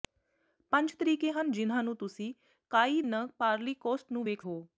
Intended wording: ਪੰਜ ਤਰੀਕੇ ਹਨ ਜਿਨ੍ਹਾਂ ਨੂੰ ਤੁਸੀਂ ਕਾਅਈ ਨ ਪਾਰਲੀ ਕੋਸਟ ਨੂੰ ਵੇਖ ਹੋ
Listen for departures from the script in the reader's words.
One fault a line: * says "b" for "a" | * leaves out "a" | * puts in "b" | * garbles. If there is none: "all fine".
all fine